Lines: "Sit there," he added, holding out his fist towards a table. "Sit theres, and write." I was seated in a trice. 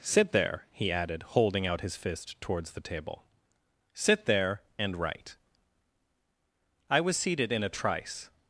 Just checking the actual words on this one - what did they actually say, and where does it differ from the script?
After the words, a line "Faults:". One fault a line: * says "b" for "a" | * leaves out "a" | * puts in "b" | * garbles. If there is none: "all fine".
"Sit there," he added, holding out his fist towards the table. "Sit there, and write." I was seated in a trice.
Faults:
* says "the" for "a"
* says "there" for "theres"